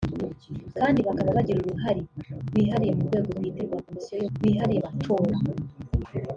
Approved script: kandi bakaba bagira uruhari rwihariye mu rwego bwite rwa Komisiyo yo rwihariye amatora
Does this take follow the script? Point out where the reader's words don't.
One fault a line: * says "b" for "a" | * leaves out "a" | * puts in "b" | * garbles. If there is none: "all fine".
all fine